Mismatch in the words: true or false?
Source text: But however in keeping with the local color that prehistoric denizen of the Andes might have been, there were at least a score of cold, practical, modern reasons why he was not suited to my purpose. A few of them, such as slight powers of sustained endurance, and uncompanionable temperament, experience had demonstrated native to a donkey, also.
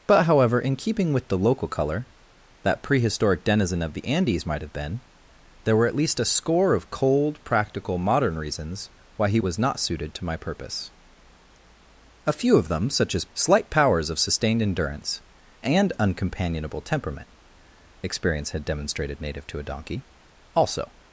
false